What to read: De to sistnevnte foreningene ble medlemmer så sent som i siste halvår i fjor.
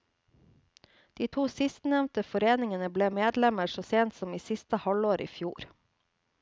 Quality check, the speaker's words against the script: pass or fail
pass